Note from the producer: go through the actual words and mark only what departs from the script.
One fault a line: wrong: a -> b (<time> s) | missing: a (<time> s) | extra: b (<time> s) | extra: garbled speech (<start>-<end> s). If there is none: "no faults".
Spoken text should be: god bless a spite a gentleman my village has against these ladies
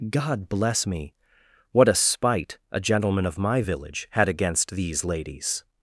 extra: me what (0.9 s)
extra: of (3.3 s)
wrong: has -> had (4.1 s)